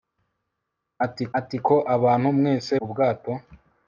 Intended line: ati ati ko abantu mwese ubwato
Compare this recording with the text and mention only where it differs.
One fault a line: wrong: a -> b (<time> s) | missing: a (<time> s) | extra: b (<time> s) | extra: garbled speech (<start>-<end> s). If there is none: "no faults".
no faults